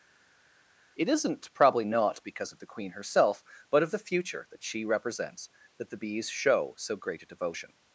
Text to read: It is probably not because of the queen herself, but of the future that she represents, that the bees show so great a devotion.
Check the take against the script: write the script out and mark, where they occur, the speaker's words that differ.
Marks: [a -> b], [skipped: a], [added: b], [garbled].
It [is -> isn't] probably not because of the queen herself, but of the future that she represents, that the bees show so great a devotion.